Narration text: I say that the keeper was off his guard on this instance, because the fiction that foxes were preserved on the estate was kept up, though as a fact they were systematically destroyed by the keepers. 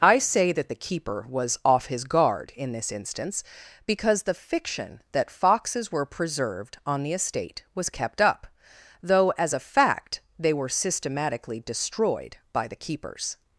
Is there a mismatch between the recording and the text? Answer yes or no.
yes